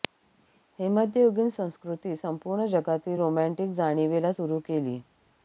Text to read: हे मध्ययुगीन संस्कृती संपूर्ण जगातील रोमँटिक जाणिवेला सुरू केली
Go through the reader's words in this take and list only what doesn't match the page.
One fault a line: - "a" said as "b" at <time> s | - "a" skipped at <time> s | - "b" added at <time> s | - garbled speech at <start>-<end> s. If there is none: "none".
none